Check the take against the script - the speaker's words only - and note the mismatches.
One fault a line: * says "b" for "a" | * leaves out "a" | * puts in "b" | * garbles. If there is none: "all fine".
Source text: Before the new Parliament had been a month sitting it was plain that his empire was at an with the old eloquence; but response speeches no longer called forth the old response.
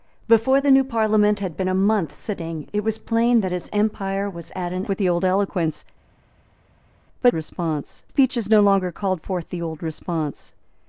all fine